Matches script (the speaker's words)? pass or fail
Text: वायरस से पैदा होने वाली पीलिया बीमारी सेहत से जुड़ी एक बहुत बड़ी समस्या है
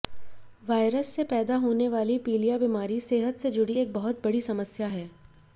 pass